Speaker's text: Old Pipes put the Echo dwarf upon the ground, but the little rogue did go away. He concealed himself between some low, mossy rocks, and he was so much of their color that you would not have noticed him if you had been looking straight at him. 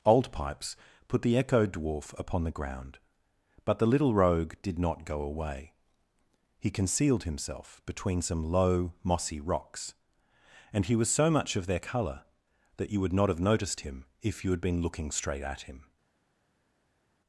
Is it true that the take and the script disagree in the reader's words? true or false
true